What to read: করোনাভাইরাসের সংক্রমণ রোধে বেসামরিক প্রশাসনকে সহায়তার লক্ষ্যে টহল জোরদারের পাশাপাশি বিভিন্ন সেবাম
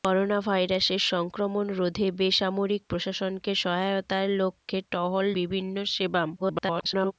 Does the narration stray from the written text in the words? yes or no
yes